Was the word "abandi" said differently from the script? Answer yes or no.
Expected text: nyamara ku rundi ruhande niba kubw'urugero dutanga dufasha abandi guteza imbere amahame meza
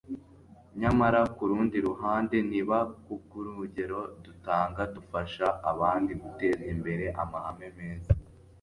no